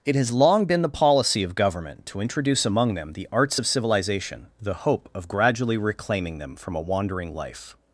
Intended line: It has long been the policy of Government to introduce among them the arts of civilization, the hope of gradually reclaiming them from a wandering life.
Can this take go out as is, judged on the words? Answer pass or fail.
pass